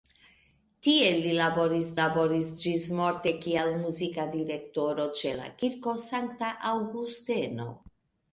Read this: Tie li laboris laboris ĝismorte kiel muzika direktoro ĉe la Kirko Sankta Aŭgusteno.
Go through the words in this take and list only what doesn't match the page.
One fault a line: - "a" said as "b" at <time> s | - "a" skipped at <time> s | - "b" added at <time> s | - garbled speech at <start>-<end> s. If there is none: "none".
none